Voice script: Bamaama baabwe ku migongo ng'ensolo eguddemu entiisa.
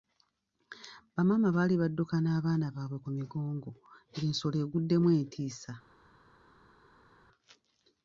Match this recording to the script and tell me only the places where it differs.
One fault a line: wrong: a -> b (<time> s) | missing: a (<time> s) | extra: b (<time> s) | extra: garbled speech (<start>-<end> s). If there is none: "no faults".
extra: baali badduka n'abaana (1.6 s)